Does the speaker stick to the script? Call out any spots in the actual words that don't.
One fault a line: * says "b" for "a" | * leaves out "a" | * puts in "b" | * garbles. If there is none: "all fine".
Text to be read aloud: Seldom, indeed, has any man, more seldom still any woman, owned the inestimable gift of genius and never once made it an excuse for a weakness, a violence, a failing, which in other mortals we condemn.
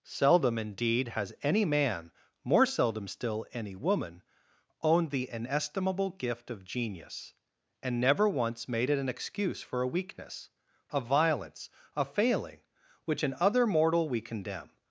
* says "mortal" for "mortals"